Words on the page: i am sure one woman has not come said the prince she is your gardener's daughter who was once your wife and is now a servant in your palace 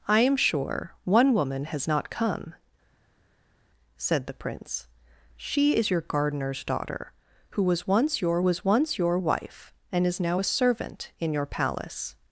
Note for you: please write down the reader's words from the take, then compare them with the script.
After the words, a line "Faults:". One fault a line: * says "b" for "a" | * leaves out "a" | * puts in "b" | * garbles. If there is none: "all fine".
i am sure one woman has not come said the prince she is your gardener's daughter who was once your was once your wife and is now a servant in your palace
Faults:
* puts in "was once your"